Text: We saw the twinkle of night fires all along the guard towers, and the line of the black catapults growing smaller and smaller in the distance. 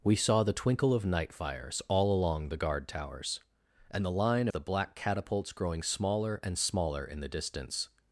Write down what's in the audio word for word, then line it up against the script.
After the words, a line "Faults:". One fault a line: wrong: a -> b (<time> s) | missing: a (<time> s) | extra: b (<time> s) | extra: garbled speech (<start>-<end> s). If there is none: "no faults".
We saw the twinkle of night fires all along the guard towers, and the line the black catapults growing smaller and smaller in the distance.
Faults:
missing: of (4.5 s)